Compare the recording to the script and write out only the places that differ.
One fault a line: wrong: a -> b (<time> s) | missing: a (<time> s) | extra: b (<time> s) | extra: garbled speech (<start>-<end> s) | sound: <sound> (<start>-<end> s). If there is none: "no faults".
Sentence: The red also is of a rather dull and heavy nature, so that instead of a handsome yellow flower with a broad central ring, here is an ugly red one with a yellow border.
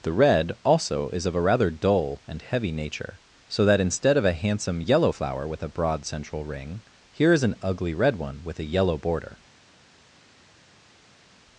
no faults